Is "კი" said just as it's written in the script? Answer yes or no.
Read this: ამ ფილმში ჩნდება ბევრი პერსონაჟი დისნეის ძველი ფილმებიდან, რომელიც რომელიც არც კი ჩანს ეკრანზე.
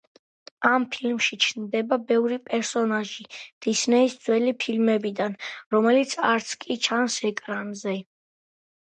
yes